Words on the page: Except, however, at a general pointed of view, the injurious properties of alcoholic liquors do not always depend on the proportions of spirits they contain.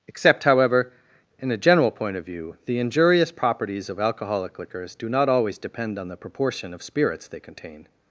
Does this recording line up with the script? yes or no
no